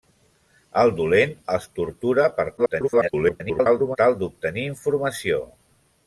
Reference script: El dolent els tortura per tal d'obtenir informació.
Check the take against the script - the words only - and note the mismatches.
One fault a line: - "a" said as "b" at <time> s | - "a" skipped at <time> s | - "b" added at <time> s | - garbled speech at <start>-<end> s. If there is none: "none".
- garbled speech at 2.6-4.0 s